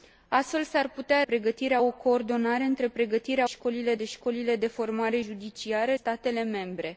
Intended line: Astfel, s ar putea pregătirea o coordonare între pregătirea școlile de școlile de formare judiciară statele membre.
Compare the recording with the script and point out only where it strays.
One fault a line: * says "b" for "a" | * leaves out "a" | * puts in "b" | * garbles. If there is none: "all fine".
all fine